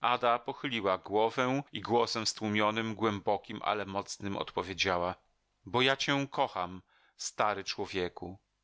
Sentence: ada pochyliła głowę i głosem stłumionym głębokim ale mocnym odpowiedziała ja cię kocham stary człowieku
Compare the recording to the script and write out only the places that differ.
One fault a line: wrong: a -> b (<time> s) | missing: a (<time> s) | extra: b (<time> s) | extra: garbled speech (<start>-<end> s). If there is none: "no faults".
extra: bo (5.7 s)